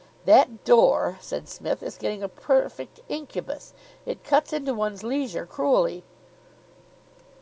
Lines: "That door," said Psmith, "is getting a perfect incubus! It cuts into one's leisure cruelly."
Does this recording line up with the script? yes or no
yes